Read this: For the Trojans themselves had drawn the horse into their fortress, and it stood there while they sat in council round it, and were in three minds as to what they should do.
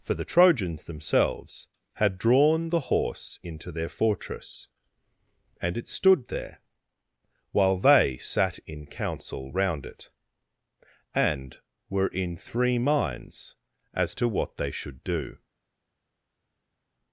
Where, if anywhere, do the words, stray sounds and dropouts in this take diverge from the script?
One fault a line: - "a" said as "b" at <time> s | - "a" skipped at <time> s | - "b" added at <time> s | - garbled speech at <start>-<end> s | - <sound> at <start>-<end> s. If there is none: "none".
none